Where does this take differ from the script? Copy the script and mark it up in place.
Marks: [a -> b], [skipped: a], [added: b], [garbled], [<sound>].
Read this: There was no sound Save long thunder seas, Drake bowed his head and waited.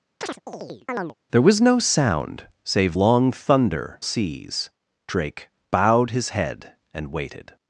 [chirp] There was no sound Save long thunder seas, Drake bowed his head and waited.